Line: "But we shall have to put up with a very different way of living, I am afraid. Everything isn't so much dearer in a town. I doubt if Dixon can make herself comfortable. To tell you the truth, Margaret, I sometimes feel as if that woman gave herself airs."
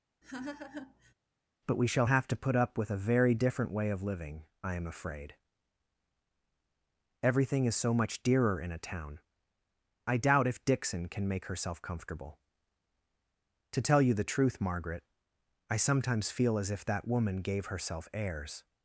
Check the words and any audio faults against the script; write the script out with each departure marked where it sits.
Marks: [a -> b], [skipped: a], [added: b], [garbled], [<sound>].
[laugh] "But we shall have to put up with a very different way of living, I am afraid. Everything [isn't -> is] so much dearer in a town. I doubt if Dixon can make herself comfortable. To tell you the truth, Margaret, I sometimes feel as if that woman gave herself airs."